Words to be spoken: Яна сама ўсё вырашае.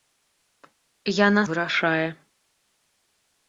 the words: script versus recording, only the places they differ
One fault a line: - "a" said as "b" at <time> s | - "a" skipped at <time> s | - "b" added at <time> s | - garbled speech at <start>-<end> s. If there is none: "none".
- "сама ўсё" skipped at 1.4 s